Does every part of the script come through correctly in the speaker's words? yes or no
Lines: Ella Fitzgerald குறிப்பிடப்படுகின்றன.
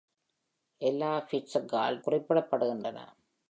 yes